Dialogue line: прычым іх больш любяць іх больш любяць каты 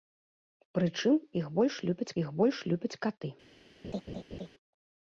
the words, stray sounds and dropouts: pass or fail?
fail